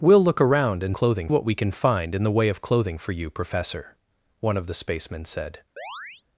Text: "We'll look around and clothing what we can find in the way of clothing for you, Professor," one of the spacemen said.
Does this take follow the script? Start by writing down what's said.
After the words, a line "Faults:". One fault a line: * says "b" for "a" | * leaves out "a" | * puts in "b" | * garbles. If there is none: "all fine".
"We'll look around and clothing what we can find in the way of clothing for you, Professor," one of the spacemen said.
Faults:
all fine